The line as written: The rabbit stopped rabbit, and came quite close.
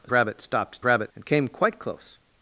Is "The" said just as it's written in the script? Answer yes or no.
yes